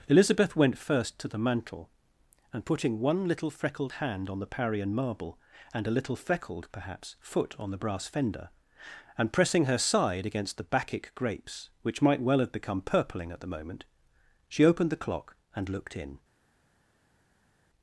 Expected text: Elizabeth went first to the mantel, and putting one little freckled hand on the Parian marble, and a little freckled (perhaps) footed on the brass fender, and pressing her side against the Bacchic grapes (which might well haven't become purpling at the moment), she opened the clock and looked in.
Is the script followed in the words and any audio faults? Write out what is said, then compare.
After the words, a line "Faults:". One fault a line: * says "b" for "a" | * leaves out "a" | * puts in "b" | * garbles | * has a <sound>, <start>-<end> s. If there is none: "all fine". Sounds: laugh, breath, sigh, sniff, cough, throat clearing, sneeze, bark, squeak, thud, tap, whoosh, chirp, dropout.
Elizabeth went first to the mantel, and putting one little freckled hand on the Parian marble, and a little freckled (perhaps) foot on the brass fender, and pressing her side against the Bacchic grapes (which might well have become purpling at the moment), she opened the clock and looked in.
Faults:
* says "foot" for "footed"
* says "have" for "haven't"